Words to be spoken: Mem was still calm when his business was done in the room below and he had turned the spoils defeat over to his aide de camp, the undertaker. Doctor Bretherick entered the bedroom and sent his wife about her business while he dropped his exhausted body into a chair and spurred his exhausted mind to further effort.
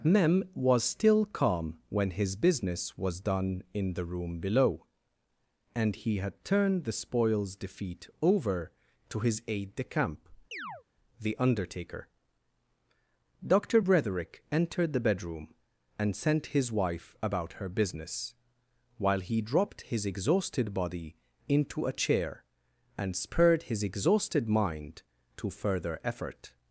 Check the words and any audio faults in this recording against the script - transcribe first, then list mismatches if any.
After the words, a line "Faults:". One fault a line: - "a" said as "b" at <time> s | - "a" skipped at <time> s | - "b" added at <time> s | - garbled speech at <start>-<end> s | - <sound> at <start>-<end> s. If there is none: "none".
Mem was still calm when his business was done in the room below and he had turned the spoils defeat over to his aide de camp, the undertaker. Doctor Bretherick entered the bedroom and sent his wife about her business while he dropped his exhausted body into a chair and spurred his exhausted mind to further effort.
Faults:
- chirp at 10.5-10.8 s